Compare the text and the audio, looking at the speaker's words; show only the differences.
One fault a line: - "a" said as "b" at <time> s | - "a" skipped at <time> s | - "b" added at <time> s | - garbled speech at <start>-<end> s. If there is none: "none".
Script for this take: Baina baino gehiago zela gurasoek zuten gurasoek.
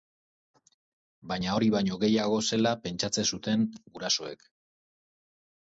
- "hori" added at 1.6 s
- "gurasoek" said as "pentsatzen" at 2.9 s